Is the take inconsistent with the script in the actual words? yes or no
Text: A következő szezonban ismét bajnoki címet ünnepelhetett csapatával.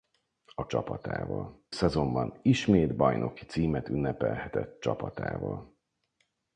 yes